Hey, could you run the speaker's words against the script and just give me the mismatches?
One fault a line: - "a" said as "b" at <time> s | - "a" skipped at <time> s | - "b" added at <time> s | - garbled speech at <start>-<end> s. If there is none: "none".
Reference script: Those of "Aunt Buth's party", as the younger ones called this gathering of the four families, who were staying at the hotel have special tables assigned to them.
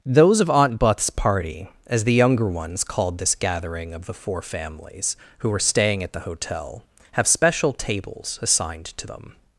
none